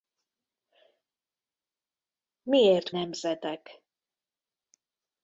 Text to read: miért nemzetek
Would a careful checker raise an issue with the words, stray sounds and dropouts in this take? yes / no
no